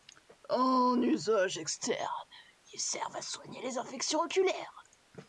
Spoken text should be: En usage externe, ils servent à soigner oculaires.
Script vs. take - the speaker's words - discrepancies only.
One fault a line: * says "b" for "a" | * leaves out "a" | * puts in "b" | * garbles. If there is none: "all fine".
* puts in "les infections"